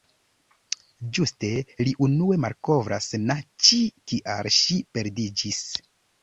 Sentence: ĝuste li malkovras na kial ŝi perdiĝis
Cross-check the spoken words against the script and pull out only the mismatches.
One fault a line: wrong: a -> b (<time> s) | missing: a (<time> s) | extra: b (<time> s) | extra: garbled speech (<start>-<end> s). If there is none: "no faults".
extra: unue (2.1 s)
extra: ĉi (3.7 s)